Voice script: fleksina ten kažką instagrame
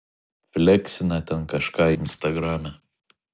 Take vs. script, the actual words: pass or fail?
pass